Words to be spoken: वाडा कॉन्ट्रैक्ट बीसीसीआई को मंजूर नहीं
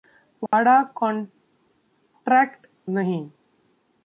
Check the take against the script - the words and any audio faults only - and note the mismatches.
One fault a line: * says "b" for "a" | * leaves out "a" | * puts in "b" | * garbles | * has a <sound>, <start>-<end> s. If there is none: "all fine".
* has a dropout, 0.5-0.5 s
* leaves out "बीसीसीआई को मंजूर"